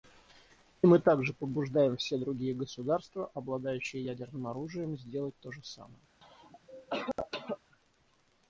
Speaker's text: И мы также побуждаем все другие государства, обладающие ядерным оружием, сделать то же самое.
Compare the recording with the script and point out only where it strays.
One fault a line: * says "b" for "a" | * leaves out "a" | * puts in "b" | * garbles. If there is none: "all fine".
all fine